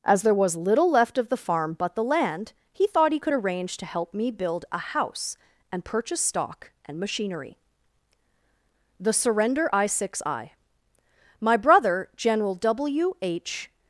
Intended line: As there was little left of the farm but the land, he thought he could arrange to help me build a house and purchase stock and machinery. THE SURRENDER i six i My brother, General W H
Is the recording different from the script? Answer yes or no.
no